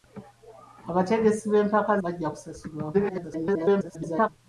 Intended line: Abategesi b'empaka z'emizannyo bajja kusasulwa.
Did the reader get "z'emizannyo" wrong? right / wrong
wrong